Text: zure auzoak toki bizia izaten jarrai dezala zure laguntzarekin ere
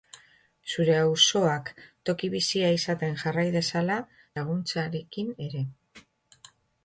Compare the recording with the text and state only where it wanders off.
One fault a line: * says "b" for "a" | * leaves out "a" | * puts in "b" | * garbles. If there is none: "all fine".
* leaves out "zure"